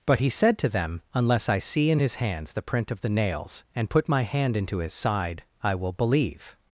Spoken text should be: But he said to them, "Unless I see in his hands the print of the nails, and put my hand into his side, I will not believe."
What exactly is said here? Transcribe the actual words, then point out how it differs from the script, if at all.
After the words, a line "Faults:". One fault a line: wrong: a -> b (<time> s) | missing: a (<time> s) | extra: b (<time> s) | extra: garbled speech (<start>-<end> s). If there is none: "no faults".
But he said to them, "Unless I see in his hands the print of the nails, and put my hand into his side, I will believe."
Faults:
missing: not (5.9 s)